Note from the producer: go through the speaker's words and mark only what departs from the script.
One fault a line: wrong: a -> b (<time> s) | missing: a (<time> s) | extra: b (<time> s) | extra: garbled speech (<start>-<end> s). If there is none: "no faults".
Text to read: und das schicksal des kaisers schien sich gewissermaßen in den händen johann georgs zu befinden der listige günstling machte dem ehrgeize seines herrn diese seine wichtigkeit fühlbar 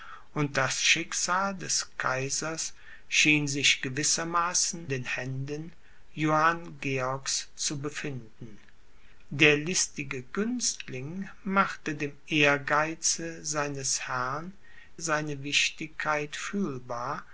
missing: in (4.9 s)
missing: diese (14.5 s)